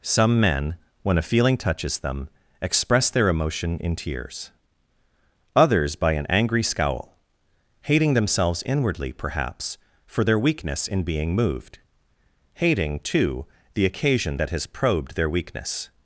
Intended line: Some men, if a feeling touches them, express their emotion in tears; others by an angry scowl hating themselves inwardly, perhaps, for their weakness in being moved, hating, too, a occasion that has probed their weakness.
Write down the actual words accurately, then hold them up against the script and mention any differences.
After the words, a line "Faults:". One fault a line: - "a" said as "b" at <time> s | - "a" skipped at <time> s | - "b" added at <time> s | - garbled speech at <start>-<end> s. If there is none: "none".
Some men, when a feeling touches them, express their emotion in tears; others by an angry scowl hating themselves inwardly, perhaps, for their weakness in being moved, hating, too, the occasion that has probed their weakness.
Faults:
- "if" said as "when" at 1.0 s
- "a" said as "the" at 13.7 s